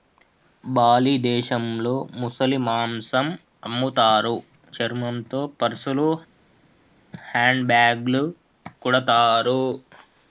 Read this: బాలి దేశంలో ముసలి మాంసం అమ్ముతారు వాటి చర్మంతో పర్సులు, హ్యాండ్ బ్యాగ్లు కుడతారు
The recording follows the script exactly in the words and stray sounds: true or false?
false